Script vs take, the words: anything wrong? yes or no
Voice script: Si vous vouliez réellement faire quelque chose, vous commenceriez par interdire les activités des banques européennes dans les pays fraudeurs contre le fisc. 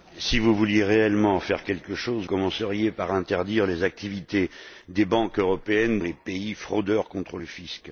yes